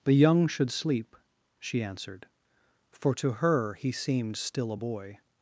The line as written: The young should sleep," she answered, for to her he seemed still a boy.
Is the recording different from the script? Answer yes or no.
no